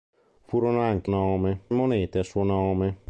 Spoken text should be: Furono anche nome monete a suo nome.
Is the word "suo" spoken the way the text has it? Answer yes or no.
yes